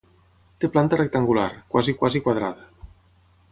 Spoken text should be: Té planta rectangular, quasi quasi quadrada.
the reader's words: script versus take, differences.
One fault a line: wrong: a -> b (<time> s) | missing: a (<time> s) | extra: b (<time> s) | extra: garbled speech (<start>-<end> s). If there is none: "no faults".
no faults